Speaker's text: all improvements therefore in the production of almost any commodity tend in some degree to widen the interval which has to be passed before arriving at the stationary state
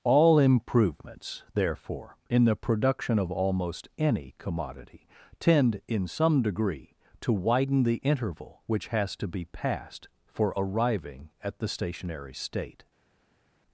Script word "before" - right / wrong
wrong